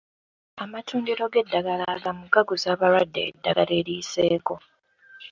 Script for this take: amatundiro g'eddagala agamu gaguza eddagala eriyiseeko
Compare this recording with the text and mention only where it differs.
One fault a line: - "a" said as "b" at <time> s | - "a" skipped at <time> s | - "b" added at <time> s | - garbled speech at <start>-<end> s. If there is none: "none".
- "abalwadde" added at 2.7 s